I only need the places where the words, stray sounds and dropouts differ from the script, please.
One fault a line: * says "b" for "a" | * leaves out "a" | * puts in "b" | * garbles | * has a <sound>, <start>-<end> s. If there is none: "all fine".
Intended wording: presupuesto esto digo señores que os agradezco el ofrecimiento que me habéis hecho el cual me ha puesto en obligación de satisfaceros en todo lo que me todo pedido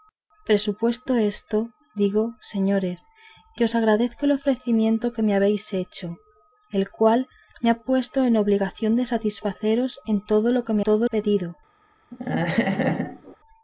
* has a laugh, 12.1-13.4 s